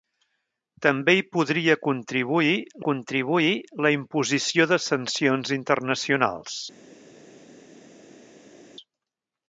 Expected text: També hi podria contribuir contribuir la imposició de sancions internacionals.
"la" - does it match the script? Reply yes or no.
yes